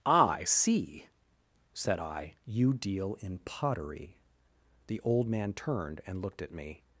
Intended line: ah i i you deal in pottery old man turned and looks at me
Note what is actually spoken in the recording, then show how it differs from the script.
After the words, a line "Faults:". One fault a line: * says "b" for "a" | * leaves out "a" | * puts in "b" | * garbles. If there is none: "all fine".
ah i see said i you deal in pottery the old man turned and looked at me
Faults:
* puts in "see said"
* puts in "the"
* says "looked" for "looks"